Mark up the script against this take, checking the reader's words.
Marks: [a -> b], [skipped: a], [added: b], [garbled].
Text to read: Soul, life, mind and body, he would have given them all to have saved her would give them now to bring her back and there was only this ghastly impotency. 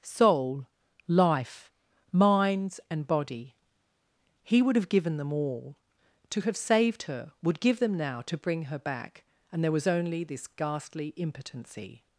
Soul, life, [mind -> minds] and body, he would have given them all to have saved her would give them now to bring her back and there was only this ghastly impotency.